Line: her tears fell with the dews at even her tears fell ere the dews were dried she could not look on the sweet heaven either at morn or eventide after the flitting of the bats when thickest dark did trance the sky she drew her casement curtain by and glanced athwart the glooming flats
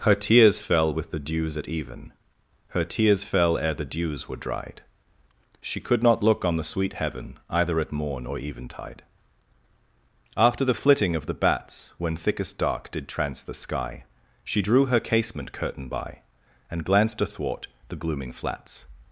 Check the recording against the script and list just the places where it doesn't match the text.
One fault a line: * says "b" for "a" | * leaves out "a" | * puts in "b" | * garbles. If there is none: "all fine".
all fine